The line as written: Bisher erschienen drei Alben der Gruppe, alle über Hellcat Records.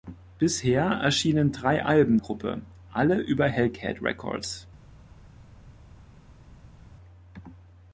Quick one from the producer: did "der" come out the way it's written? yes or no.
no